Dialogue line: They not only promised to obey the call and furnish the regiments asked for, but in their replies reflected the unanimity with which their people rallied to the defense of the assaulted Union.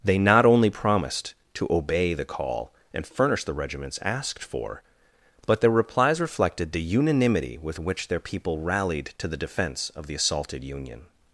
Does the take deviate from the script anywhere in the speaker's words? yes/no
yes